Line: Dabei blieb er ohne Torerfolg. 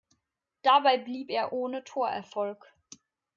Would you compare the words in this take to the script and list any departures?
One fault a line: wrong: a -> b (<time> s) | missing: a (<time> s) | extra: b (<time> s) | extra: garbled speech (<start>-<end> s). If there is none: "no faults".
no faults